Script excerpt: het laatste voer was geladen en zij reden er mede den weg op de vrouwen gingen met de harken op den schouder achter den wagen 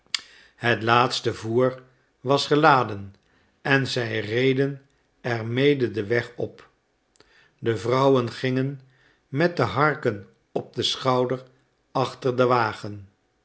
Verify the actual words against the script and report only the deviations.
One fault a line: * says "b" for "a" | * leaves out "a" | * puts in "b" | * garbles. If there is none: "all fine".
all fine